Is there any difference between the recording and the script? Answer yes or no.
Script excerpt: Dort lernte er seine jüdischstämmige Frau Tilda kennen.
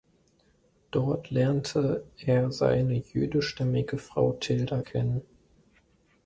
no